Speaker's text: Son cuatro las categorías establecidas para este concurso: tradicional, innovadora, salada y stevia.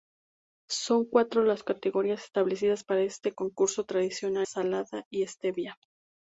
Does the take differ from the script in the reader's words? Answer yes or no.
yes